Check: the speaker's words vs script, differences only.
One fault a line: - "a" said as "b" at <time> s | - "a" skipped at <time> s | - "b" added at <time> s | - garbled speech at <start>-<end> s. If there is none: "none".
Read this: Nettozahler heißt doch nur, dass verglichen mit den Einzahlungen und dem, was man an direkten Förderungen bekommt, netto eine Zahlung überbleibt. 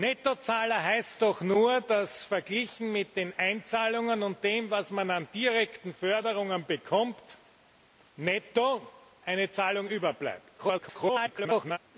- garbled speech at 10.6-11.8 s